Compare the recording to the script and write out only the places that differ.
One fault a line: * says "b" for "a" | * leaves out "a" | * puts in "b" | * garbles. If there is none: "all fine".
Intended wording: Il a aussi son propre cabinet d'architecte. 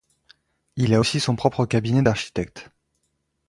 all fine